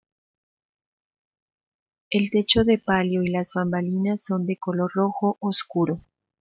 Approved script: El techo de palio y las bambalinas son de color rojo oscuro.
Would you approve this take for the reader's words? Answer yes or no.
yes